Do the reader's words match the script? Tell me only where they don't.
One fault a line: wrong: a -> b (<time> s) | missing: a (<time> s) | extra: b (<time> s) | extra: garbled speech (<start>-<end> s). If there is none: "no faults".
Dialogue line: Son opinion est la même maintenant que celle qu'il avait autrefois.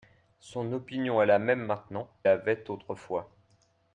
missing: que celle qu'il (2.1 s)